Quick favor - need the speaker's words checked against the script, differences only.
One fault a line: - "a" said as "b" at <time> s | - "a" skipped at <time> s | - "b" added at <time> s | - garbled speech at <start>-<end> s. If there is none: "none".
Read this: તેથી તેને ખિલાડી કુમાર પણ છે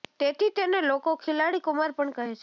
- "લોકો" added at 0.8 s
- "કહે" added at 2.1 s